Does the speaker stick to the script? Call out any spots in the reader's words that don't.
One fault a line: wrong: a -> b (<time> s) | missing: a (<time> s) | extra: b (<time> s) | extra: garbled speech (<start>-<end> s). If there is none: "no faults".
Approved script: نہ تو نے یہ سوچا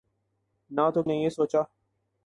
no faults